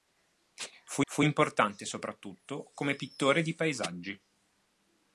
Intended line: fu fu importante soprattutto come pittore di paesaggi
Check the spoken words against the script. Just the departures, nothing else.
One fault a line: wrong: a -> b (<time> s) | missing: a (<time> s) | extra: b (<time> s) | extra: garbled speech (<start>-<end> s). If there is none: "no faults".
no faults